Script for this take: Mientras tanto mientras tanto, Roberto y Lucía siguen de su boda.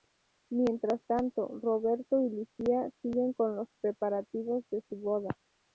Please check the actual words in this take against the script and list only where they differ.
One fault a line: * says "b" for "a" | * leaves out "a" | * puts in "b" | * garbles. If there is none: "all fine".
* leaves out "mientras tanto"
* puts in "con los preparativos"